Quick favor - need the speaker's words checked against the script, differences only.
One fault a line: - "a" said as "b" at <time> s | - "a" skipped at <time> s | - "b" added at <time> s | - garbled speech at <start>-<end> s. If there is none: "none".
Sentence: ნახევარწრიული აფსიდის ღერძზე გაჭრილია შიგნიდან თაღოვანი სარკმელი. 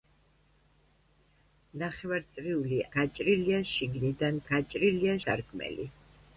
- "აფსიდის ღერძზე" skipped at 2.8 s
- "თაღოვანი" said as "გაჭრილია" at 4.5 s